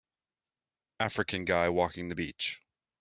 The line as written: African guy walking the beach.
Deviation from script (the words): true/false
false